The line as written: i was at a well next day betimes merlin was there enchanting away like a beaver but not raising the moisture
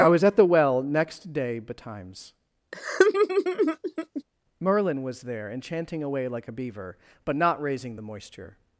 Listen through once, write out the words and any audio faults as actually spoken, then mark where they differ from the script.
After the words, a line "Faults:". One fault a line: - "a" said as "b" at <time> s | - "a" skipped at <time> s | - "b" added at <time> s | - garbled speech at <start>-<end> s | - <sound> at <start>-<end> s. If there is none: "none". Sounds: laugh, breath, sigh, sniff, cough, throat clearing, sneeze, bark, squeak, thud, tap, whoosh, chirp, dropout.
i was at the well next day betimes merlin was there enchanting away like a beaver but not raising the moisture
Faults:
- "a" said as "the" at 0.3 s
- laugh at 2.7-4.2 s